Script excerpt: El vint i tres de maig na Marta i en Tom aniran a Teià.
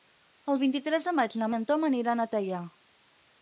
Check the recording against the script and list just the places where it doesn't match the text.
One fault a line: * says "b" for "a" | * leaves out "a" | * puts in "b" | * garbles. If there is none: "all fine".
* leaves out "Marta"